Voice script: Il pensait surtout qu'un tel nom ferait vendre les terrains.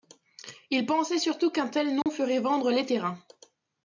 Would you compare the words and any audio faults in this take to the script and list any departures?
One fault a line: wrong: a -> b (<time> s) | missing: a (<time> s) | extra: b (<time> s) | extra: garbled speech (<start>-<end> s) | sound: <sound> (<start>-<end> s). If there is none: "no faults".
sound: dropout (2.0-2.1 s)